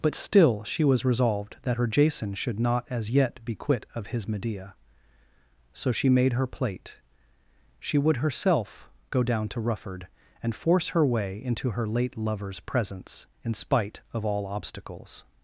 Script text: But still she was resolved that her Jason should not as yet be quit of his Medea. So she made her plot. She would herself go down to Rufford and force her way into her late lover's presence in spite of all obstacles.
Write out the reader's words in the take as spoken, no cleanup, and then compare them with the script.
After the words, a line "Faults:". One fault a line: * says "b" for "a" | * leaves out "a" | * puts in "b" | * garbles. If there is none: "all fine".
But still she was resolved that her Jason should not as yet be quit of his Medea. So she made her plate. She would herself go down to Rufford and force her way into her late lover's presence in spite of all obstacles.
Faults:
* says "plate" for "plot"